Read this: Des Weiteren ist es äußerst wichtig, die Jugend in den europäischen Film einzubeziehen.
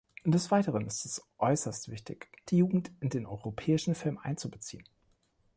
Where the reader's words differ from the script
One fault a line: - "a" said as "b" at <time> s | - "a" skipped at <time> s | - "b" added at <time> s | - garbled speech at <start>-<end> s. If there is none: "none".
none